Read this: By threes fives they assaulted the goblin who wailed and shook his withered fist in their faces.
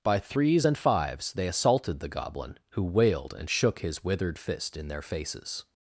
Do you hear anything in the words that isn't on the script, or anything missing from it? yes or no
yes